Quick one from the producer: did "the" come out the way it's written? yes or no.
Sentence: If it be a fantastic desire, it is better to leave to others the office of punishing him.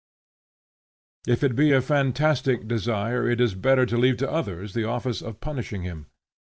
yes